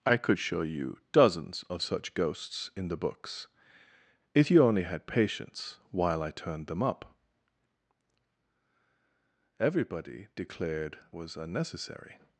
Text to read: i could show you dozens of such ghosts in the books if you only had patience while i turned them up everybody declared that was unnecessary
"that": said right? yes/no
no